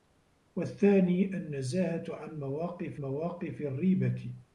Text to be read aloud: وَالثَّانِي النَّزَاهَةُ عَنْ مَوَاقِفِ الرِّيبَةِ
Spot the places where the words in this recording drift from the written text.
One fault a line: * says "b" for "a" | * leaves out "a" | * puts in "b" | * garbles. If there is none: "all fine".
* puts in "مَوَاقِفِ"